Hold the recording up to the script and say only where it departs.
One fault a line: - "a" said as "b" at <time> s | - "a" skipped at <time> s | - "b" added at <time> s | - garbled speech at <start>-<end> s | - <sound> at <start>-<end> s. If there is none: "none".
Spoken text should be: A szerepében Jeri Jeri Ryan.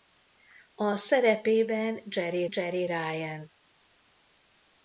none